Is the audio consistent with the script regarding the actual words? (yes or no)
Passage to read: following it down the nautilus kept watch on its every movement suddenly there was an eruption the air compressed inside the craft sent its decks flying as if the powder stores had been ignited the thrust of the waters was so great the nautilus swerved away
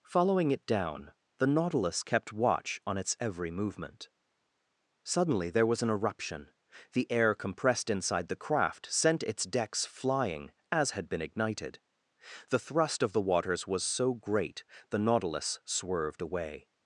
no